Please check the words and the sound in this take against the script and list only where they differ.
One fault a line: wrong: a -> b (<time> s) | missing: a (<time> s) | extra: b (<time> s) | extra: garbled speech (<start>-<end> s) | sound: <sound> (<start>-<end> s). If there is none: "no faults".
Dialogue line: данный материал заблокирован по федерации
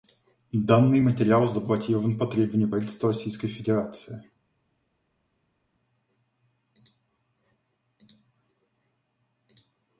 extra: требованию правительства российской (2.3 s)